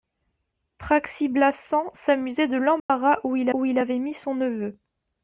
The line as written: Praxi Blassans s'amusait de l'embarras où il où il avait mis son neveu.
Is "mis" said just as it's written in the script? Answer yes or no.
yes